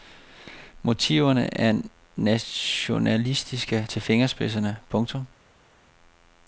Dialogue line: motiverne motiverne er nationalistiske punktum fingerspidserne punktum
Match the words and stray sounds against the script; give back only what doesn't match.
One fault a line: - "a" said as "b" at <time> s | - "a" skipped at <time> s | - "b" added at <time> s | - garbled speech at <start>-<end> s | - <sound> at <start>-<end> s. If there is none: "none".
- "motiverne" skipped at 1.6 s
- "punktum" said as "til" at 3.9 s